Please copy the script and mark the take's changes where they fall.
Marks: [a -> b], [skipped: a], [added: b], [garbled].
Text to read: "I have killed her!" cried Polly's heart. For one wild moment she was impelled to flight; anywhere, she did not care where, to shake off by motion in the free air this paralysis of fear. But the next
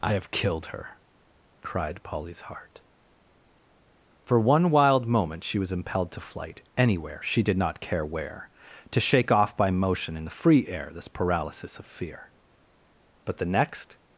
"I have killed her!" cried Polly's heart. For one wild moment she was impelled to flight; anywhere, she did not care where, to shake off by motion in the free air this paralysis of fear. But the next